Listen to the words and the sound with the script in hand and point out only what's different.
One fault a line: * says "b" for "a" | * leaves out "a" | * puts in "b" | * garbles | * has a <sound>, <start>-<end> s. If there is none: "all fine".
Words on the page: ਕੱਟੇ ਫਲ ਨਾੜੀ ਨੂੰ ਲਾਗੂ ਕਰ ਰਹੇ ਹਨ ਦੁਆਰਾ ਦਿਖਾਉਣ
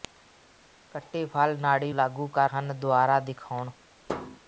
* leaves out "ਨੂੰ"
* leaves out "ਰਹੇ"
* has a thud, 4.1-4.4 s